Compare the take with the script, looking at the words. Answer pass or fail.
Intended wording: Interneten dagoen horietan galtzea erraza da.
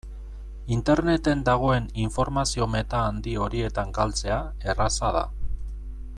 fail